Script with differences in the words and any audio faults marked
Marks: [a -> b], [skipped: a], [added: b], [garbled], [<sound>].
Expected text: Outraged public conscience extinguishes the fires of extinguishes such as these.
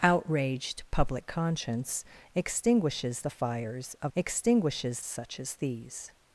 Outraged public conscience extinguishes the fires of extinguishes such as these.